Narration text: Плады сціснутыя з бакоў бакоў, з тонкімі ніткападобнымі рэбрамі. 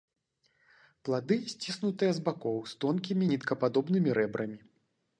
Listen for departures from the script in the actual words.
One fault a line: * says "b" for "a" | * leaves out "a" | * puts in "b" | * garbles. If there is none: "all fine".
* leaves out "бакоў"